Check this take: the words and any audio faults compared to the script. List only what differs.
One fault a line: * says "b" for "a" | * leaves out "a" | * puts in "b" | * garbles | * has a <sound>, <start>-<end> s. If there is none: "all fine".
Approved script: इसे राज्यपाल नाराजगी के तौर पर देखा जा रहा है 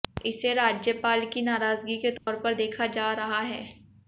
* puts in "की"
* has a dropout, 2.2-2.3 s